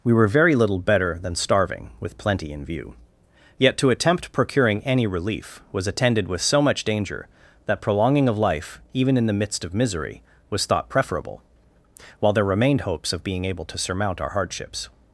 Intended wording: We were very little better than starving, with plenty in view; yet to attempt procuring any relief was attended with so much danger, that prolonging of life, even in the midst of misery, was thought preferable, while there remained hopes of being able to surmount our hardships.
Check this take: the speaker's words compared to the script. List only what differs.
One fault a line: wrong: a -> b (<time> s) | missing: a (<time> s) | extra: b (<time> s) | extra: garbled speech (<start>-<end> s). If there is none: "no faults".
no faults